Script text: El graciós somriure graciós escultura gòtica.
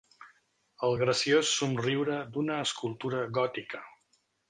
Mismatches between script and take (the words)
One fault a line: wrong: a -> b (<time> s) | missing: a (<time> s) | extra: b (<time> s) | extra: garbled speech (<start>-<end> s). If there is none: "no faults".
wrong: graciós -> d'una (2.4 s)